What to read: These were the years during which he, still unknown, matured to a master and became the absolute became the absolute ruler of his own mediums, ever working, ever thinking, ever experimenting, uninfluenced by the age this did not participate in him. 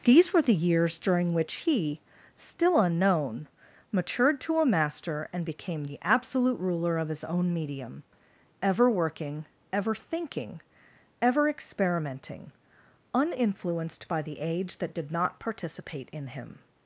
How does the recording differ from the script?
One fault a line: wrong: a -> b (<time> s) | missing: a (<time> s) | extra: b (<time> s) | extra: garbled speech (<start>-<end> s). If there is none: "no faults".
missing: became the absolute (6.6 s)
wrong: mediums -> medium (7.5 s)
wrong: this -> that (14.8 s)